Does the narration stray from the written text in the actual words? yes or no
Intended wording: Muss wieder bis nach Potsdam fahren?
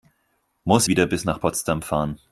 no